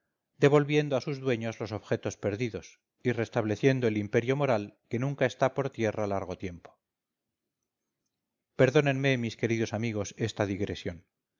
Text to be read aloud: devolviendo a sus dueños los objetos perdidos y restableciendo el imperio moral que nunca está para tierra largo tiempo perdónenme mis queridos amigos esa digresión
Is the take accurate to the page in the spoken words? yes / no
no